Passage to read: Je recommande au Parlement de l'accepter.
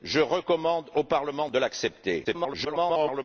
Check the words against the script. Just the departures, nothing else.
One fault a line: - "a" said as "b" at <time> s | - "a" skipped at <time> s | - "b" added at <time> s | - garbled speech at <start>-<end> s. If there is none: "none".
- garbled speech at 2.2-3.2 s